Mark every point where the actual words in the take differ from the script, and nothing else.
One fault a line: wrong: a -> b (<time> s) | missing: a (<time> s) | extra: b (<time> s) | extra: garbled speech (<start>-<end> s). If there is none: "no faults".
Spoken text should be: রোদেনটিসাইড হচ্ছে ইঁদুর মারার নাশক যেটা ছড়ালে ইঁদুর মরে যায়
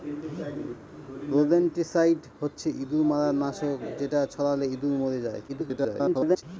extra: garbled speech (5.5-6.4 s)